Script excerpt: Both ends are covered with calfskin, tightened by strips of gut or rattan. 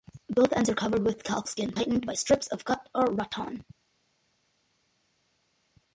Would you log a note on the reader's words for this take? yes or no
no